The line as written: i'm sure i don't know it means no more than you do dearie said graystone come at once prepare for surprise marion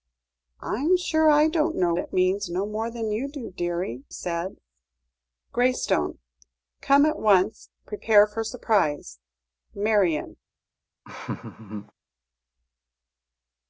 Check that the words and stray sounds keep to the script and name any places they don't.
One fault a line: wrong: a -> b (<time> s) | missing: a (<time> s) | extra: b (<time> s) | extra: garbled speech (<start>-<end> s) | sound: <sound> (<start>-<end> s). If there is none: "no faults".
sound: laugh (11.0-11.9 s)